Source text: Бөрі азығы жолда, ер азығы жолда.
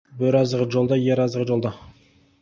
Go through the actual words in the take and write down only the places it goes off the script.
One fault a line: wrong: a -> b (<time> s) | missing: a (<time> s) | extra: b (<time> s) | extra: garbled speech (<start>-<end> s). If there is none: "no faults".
no faults